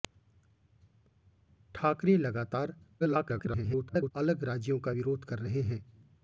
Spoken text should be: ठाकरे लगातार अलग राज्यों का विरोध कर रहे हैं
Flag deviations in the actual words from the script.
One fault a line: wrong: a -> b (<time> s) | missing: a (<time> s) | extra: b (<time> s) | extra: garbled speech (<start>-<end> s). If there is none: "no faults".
extra: garbled speech (3.0-4.1 s)